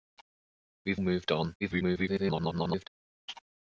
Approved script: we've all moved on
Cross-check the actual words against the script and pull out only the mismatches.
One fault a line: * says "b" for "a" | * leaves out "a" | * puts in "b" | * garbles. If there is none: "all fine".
* leaves out "all"
* garbles